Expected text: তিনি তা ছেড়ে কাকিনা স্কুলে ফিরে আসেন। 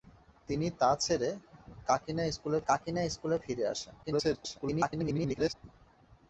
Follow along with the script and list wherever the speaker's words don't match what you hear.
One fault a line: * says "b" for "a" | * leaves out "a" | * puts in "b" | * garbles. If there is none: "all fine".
* puts in "কাকিনা স্কুলে"
* garbles